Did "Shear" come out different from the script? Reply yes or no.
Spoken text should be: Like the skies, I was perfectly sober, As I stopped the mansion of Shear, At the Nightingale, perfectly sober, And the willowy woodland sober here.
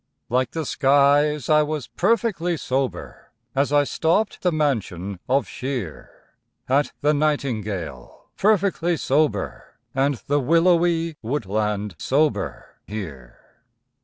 no